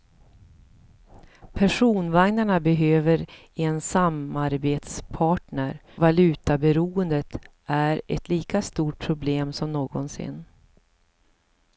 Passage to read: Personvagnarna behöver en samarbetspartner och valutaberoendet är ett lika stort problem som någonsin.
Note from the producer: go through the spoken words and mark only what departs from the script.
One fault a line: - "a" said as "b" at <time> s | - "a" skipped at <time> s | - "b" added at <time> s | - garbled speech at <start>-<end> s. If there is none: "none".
- "och" skipped at 5.8 s